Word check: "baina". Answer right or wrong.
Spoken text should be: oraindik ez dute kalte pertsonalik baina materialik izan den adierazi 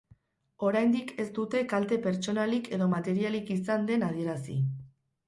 wrong